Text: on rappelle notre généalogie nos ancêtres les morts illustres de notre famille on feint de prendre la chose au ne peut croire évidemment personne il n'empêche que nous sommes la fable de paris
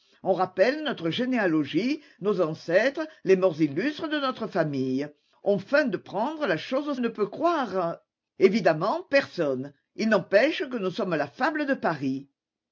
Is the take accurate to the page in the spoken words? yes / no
yes